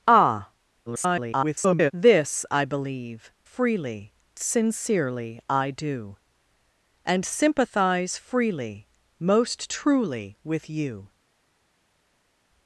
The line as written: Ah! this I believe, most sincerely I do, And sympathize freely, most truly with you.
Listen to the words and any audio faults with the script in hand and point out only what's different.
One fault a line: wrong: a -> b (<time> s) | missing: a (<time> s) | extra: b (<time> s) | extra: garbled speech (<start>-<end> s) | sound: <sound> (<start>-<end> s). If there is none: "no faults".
extra: garbled speech (0.9-1.9 s)
wrong: most -> freely (3.4 s)